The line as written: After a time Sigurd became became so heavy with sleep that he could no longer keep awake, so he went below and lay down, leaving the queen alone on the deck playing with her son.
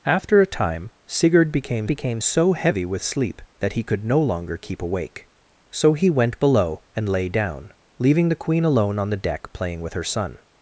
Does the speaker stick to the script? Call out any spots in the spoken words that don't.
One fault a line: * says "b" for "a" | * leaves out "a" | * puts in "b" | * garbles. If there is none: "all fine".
all fine